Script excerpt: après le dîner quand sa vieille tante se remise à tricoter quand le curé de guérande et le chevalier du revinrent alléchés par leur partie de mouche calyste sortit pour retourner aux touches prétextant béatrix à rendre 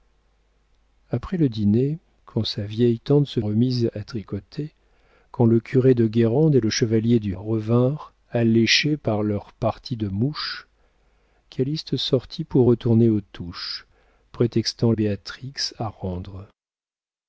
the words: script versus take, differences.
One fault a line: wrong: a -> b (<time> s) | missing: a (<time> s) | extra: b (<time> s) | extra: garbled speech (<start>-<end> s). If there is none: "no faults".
no faults